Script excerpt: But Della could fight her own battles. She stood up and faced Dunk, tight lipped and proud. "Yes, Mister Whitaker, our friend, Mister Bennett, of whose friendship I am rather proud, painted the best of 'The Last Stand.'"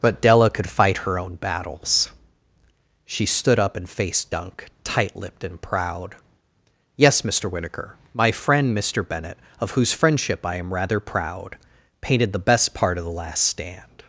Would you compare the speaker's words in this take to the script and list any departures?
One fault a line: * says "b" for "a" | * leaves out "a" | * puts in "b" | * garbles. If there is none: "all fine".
* says "my" for "our"
* puts in "part"